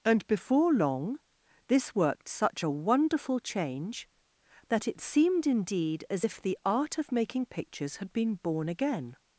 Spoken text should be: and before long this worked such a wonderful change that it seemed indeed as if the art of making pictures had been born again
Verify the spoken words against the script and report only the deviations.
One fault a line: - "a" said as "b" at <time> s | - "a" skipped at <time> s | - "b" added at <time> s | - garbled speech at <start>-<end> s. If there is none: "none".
none